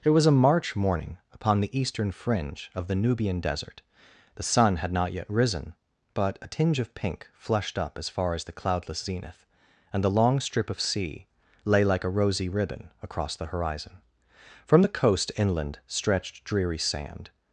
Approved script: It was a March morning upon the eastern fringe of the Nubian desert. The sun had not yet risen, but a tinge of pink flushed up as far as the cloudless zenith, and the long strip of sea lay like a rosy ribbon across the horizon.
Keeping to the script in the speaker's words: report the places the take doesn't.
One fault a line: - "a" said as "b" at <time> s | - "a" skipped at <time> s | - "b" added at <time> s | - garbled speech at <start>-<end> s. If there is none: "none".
- "From the coast inland stretched dreary sand" added at 14.7 s